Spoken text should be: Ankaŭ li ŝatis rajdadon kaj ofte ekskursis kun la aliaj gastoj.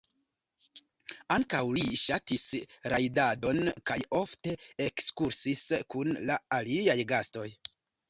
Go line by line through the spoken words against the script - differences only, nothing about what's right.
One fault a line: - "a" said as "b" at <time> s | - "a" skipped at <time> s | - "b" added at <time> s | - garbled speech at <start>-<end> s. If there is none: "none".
none